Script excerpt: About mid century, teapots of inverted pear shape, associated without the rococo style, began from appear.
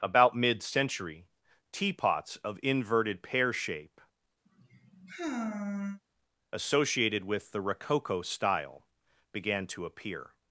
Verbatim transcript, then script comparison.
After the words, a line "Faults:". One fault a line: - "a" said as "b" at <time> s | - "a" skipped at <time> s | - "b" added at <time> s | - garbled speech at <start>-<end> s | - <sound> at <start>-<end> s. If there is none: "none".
About mid century, teapots of inverted pear shape, associated with the rococo style, began to appear.
Faults:
- sigh at 4.5-6.0 s
- "without" said as "with" at 7.2 s
- "from" said as "to" at 9.7 s